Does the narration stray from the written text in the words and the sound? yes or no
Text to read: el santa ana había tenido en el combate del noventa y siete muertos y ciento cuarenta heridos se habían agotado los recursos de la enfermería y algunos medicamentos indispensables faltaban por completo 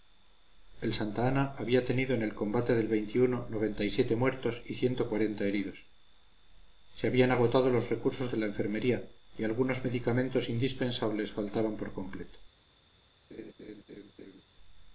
yes